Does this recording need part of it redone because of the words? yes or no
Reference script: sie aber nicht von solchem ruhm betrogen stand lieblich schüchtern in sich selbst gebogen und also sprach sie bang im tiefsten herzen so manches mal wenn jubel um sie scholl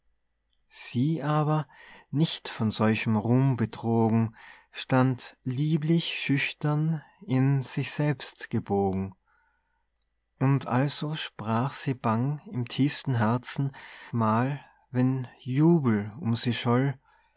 yes